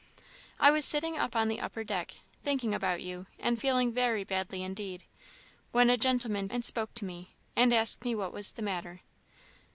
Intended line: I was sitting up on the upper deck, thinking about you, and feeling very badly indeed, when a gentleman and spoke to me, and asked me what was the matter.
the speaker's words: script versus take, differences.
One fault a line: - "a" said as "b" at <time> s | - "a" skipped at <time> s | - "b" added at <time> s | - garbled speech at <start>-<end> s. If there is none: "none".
none